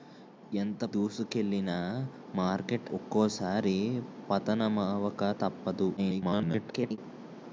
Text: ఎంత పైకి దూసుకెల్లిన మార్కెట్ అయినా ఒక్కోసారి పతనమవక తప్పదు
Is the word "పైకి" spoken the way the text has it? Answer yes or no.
no